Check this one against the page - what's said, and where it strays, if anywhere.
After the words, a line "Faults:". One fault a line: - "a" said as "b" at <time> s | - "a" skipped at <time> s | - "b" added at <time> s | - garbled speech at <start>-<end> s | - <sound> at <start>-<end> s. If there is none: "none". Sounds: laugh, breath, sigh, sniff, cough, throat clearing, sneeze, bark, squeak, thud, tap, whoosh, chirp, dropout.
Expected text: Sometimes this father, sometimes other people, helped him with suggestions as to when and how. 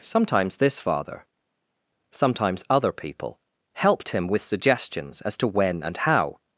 Sometimes this father, sometimes other people, helped him with suggestions as to when and how.
Faults:
none